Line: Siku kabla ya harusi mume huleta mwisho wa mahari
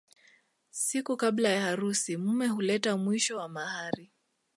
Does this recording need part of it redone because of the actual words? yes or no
no